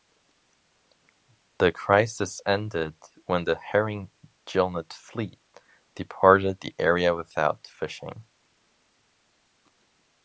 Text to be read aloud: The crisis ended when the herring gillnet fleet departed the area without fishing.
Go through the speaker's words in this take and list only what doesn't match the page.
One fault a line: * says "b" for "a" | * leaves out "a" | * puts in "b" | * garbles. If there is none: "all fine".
all fine